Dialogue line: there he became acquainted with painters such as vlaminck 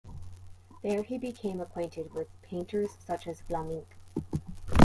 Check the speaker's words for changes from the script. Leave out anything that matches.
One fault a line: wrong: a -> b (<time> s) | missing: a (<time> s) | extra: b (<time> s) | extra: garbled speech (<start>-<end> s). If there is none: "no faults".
no faults